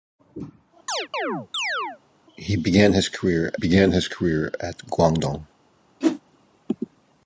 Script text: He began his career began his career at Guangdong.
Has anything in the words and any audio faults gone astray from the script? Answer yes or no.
yes